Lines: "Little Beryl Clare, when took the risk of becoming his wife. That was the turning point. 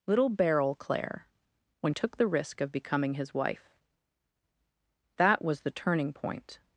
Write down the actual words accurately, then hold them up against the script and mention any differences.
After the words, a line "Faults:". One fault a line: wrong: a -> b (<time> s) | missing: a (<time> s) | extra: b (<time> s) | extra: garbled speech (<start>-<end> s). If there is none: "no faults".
"Little Beryl Clare, when took the risk of becoming his wife. That was the turning point.
Faults:
no faults